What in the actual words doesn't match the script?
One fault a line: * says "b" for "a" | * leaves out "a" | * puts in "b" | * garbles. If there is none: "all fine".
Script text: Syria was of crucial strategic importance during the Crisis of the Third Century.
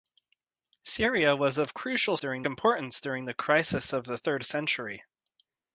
* says "during" for "strategic"